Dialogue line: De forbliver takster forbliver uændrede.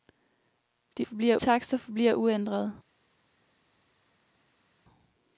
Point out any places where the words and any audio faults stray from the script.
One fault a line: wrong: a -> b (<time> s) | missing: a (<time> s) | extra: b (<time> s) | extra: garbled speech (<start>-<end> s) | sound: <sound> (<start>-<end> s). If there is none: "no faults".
no faults